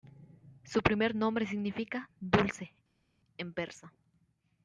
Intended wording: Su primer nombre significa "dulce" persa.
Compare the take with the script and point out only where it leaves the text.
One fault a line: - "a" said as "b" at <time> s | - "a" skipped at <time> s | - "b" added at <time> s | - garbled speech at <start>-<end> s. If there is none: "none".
- "en" added at 3.4 s